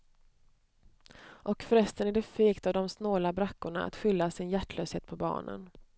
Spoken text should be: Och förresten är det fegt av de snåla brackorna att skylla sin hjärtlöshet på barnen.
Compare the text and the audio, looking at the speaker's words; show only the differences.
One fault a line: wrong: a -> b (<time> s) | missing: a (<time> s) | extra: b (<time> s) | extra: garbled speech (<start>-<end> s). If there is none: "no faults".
no faults